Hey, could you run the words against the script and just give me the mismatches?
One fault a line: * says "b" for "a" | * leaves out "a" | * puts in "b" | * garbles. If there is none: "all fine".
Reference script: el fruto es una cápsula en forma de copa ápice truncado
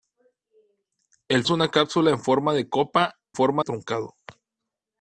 * leaves out "fruto"
* says "forma" for "ápice"